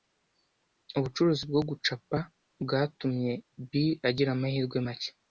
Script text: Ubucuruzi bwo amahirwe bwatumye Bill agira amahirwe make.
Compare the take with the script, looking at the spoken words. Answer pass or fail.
fail